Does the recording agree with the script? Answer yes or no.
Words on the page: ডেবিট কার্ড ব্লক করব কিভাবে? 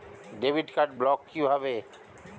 no